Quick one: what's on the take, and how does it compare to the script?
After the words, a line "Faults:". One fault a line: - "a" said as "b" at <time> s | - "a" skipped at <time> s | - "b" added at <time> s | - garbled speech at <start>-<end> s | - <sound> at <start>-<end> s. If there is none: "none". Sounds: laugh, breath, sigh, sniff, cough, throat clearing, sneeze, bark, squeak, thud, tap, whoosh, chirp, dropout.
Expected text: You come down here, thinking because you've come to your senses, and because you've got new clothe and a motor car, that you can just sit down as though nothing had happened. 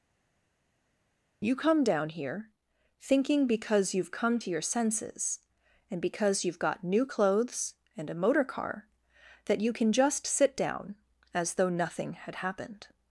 You come down here, thinking because you've come to your senses, and because you've got new clothes and a motor car, that you can just sit down as though nothing had happened.
Faults:
- "clothe" said as "clothes" at 7.0 s